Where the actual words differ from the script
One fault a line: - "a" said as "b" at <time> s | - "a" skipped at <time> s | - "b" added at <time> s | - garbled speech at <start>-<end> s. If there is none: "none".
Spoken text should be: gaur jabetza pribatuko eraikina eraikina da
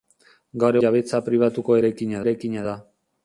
none